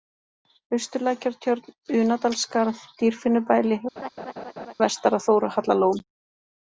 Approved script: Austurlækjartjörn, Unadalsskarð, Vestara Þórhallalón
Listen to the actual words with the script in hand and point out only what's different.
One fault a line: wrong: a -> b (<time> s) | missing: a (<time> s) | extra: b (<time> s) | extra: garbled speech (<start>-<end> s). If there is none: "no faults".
extra: Dýrfinnubæli (3.0 s)